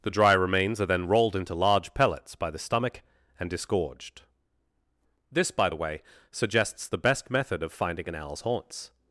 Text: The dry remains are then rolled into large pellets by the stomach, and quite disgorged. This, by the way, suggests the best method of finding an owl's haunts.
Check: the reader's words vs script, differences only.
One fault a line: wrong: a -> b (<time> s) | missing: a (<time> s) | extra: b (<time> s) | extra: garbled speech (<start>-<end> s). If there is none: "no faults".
missing: quite (3.5 s)